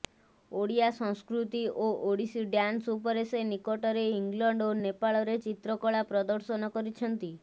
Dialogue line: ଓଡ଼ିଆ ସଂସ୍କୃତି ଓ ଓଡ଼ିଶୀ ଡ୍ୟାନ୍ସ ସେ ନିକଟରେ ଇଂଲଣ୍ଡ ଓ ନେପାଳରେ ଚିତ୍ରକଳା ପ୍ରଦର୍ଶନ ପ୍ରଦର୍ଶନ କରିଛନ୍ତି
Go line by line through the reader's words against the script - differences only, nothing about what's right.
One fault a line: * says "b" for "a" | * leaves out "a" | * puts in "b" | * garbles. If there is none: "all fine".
* puts in "ଉପରେ"
* leaves out "ପ୍ରଦର୍ଶନ"